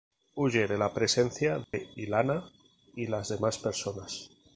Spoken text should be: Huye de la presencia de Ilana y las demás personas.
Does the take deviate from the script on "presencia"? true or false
false